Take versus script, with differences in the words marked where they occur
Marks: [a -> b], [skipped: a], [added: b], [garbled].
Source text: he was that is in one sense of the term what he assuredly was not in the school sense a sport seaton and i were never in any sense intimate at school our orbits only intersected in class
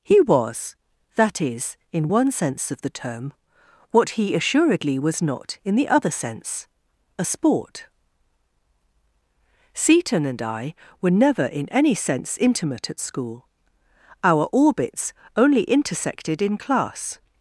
he was that is in one sense of the term what he assuredly was not in the [school -> other] sense a sport seaton and i were never in any sense intimate at school our orbits only intersected in class